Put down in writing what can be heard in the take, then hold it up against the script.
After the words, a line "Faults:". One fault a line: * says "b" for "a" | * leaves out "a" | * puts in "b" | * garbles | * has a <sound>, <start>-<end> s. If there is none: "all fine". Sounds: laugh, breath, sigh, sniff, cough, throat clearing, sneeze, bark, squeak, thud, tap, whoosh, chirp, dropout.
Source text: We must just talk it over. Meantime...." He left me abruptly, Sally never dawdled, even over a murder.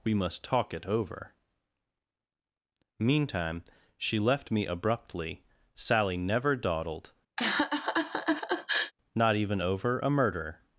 We must talk it over. Meantime...." She left me abruptly, Sally never dawdled, not even over a murder.
Faults:
* leaves out "just"
* says "She" for "He"
* has a laugh, 7.4-8.9 s
* puts in "not"